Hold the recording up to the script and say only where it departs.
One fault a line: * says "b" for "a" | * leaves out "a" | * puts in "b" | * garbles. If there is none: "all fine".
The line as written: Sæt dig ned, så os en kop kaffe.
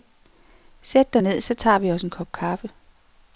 * puts in "tager vi"